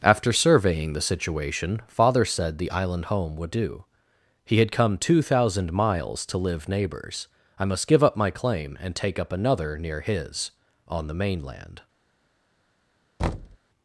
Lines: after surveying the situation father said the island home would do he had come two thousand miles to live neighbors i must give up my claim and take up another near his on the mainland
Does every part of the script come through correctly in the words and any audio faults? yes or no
no